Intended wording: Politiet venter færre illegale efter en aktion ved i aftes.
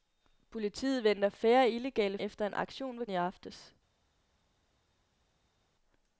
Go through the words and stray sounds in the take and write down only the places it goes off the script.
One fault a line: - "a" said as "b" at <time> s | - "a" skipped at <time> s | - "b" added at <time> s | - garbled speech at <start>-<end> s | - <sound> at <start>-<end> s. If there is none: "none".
none